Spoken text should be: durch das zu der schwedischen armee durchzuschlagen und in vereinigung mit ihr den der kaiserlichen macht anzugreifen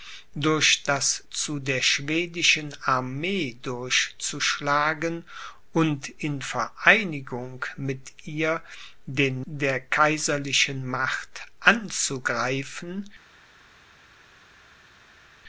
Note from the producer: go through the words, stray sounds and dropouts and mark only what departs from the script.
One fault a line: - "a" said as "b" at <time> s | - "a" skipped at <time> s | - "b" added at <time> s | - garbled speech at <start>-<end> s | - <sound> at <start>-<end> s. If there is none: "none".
none